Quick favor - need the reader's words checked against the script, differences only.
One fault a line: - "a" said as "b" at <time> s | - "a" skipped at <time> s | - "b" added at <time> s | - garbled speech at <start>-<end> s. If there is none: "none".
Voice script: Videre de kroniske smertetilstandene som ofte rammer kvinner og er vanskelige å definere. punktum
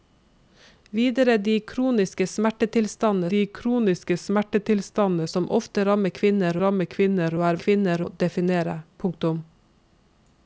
- "de kroniske smertetilstandene" added at 3.3 s
- "rammer kvinner" added at 6.6 s
- "vanskelige" said as "kvinner" at 7.6 s